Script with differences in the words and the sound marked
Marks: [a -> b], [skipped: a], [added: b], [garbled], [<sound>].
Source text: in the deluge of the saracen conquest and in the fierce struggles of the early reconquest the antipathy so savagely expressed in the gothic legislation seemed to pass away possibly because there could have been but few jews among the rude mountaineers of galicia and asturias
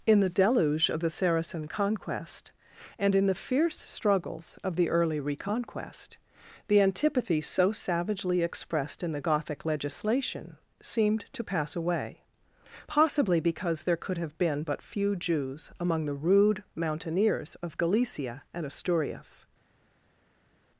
in the deluge of the saracen conquest and in the fierce struggles of the early reconquest the antipathy so savagely expressed in the gothic legislation seemed to pass away possibly because there could have been but few jews among the rude mountaineers of galicia and asturias